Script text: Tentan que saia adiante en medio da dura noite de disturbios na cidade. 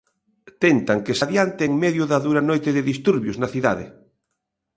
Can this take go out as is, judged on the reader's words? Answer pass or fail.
fail